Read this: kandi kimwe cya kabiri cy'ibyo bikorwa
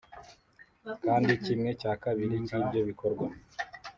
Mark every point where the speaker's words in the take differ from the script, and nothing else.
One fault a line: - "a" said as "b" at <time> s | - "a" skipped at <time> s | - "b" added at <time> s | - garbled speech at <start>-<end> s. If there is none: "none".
none